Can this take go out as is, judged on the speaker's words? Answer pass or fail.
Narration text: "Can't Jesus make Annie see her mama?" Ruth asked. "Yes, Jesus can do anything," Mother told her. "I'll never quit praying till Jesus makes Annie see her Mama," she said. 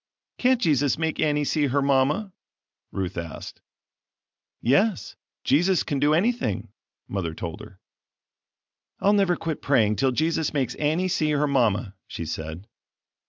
pass